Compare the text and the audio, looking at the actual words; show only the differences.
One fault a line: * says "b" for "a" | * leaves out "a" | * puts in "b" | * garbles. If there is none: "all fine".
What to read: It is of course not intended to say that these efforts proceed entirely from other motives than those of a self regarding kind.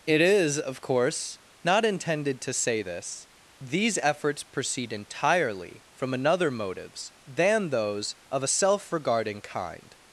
* says "this" for "that"
* says "another" for "other"